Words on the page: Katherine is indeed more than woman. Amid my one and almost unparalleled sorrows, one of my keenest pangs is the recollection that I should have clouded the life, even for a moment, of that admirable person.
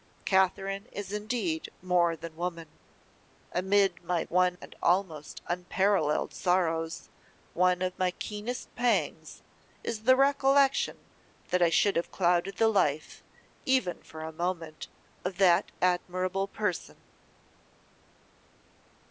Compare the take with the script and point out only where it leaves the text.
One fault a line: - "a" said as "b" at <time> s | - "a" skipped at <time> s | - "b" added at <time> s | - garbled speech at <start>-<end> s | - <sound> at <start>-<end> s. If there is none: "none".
none